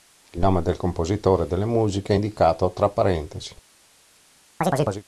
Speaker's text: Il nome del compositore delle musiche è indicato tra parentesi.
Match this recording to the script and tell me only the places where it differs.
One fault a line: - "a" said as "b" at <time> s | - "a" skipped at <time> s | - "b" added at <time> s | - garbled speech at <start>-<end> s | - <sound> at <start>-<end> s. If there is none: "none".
- chirp at 4.6-5.0 s